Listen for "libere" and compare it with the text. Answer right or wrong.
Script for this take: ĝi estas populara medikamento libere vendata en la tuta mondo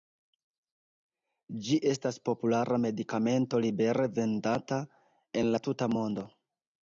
right